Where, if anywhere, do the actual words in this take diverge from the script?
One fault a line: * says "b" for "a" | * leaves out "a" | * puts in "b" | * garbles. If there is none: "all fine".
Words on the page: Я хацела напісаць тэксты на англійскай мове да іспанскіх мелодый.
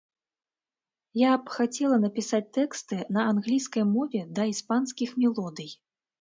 * puts in "б"